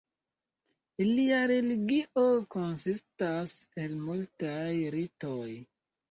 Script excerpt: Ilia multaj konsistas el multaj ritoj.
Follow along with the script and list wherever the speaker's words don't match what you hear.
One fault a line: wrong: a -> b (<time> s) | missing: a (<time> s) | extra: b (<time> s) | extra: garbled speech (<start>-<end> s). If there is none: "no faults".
wrong: multaj -> religio (1.5 s)